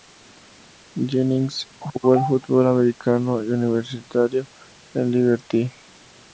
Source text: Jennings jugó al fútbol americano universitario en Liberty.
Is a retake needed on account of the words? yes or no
no